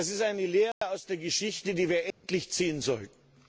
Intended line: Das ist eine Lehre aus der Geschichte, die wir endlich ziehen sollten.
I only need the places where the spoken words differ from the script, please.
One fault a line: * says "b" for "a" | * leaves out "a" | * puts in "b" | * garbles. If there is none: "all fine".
all fine